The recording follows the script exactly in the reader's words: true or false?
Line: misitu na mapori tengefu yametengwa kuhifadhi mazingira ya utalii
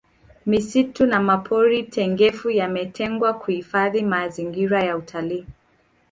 true